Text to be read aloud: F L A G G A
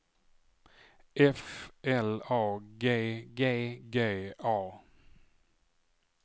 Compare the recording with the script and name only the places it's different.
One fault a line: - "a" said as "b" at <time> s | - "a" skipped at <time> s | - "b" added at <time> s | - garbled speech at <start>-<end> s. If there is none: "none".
- "G" added at 3.9 s